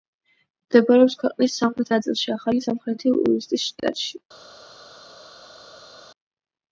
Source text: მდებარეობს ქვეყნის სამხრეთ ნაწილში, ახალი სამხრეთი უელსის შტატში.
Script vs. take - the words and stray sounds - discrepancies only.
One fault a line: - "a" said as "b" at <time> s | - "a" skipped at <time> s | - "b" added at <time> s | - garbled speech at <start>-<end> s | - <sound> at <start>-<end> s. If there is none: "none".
none